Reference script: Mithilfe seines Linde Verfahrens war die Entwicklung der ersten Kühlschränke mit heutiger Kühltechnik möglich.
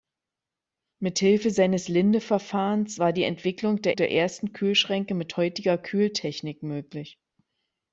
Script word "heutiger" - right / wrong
right